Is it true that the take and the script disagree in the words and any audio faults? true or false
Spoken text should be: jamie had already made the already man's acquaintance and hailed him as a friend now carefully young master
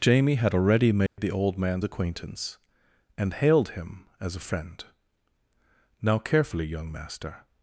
true